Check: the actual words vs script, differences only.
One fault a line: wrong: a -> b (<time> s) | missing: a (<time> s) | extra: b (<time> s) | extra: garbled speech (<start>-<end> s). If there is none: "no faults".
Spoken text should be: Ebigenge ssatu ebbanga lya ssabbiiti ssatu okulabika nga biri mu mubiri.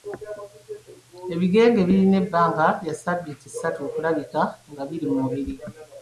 wrong: ssatu -> birina (1.9 s)